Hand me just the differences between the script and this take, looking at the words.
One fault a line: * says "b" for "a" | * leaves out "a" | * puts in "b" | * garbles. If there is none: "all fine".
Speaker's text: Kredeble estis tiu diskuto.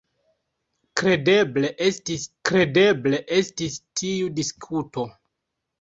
* puts in "kredeble estis"